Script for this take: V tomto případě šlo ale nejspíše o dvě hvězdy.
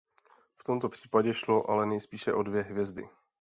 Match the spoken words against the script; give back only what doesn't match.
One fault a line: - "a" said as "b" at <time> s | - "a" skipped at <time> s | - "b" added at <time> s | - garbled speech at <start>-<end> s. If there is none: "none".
none